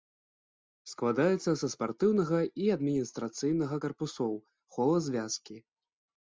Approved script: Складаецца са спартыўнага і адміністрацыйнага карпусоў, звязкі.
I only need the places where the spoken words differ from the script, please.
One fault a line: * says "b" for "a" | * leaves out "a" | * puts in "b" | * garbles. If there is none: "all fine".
* puts in "хола"